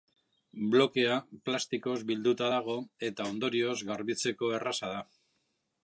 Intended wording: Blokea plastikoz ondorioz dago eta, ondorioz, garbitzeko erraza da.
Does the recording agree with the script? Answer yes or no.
no